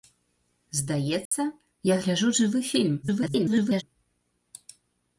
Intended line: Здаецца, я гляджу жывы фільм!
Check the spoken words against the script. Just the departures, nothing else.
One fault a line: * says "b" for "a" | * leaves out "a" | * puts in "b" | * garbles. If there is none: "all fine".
* garbles